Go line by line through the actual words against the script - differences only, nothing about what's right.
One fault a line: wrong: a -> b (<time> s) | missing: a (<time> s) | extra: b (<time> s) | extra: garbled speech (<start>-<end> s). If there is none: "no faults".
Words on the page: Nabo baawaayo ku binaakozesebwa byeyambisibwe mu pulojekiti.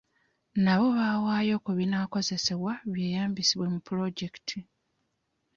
no faults